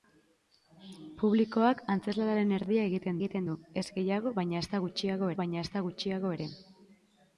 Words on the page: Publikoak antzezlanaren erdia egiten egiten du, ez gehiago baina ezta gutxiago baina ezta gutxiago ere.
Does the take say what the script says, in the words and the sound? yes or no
yes